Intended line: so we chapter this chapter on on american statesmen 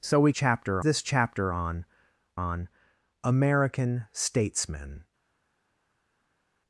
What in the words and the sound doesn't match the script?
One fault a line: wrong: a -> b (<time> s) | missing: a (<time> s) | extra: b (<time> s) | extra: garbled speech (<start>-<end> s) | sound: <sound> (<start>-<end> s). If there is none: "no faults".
no faults